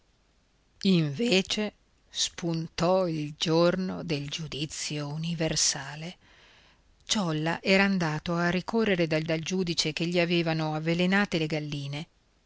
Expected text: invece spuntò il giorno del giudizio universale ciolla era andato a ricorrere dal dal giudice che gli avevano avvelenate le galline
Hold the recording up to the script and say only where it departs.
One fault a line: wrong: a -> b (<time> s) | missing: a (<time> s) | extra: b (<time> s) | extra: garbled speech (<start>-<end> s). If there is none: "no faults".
no faults